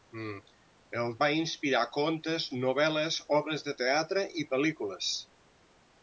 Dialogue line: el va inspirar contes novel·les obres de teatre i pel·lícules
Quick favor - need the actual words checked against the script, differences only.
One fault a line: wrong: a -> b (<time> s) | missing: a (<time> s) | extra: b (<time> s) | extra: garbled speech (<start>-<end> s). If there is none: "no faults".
no faults